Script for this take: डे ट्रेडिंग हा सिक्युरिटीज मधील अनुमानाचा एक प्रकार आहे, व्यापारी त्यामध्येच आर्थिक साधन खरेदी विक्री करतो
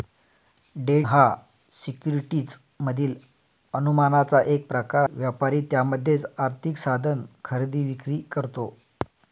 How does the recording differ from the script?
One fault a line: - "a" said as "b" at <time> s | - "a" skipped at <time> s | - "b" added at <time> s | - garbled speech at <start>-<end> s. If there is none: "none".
- "ट्रेडिंग" skipped at 0.9 s
- "आहे" skipped at 5.0 s